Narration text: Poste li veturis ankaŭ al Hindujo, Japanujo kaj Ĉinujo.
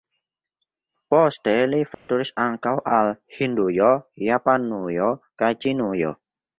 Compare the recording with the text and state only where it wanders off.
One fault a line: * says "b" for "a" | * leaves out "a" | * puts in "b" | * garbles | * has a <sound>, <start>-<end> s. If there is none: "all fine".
* has a dropout, 1.9-2.1 s